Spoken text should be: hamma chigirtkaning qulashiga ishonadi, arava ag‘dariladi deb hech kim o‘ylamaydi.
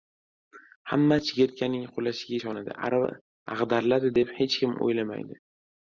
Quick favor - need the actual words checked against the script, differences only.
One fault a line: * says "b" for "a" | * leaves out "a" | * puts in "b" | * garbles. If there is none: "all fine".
all fine